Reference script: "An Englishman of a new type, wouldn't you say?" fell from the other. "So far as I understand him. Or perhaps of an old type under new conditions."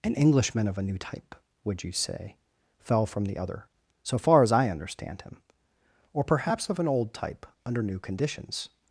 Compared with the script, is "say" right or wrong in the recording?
right